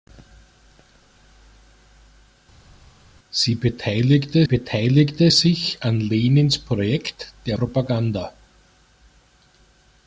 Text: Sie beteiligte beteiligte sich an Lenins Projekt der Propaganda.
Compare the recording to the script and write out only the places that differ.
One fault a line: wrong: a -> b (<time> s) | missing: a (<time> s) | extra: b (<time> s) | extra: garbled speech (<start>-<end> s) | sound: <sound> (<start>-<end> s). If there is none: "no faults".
no faults